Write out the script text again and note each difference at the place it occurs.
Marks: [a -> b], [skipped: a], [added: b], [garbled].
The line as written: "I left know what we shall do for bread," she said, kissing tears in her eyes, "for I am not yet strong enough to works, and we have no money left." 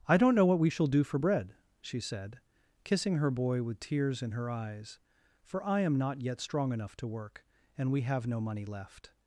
"I [left -> don't] know what we shall do for bread," she said, kissing [added: her boy with] tears in her eyes, "for I am not yet strong enough to [works, -> work] and we have no money left."